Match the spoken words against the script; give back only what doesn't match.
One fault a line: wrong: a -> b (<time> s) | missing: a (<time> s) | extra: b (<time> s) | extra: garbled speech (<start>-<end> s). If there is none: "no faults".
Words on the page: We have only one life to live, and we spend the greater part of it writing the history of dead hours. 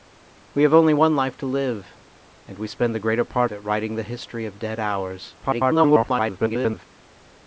missing: of (3.5 s)
extra: garbled speech (5.4-6.9 s)